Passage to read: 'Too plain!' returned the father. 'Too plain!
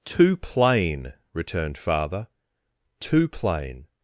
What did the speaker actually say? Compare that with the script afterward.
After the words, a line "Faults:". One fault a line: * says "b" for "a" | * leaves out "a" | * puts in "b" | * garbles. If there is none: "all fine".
'Too plain!' returned father. 'Too plain!
Faults:
* leaves out "the"